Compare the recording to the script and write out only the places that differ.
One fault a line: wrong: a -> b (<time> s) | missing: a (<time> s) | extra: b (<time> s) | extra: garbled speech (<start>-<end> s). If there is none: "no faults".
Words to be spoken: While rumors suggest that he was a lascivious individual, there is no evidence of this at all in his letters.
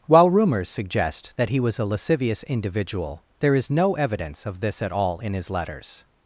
no faults